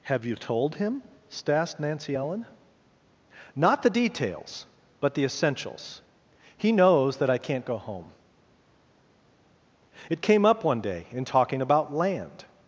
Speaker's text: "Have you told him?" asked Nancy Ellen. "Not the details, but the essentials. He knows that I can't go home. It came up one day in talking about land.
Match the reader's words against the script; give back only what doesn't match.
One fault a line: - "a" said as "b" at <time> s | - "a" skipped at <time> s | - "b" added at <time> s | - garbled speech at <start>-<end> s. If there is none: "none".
none